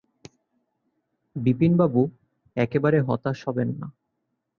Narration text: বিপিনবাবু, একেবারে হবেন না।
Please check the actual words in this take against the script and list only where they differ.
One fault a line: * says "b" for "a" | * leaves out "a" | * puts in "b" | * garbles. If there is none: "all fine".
* puts in "হতাশ"